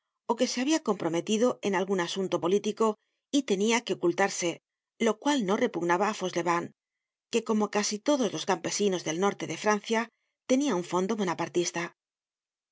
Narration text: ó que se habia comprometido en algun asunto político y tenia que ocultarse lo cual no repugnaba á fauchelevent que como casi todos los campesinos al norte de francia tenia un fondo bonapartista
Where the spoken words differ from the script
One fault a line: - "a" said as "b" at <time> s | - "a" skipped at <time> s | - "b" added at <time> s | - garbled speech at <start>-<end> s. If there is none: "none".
- "al" said as "del" at 9.1 s